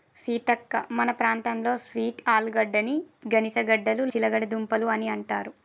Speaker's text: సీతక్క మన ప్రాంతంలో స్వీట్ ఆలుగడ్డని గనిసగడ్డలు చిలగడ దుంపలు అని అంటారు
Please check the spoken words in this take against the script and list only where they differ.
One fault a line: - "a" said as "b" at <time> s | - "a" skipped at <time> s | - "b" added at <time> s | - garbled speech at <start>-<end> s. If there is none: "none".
none